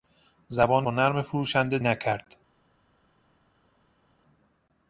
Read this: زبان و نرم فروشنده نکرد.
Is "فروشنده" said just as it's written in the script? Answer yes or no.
yes